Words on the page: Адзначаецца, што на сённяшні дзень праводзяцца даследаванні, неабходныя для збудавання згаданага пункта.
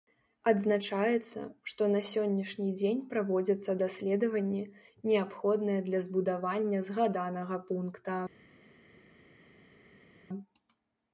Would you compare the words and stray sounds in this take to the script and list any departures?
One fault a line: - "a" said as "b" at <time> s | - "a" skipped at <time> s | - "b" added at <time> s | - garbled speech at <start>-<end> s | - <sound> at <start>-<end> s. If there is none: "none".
none